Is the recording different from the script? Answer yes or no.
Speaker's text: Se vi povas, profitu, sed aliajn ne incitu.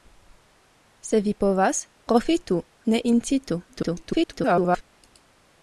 yes